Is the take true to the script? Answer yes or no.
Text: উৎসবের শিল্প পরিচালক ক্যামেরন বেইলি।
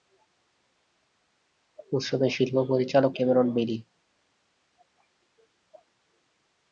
yes